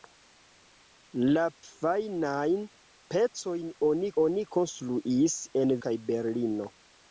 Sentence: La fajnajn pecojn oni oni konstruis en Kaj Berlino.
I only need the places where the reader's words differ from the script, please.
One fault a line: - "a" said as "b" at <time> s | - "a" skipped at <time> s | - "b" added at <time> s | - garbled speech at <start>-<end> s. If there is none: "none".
none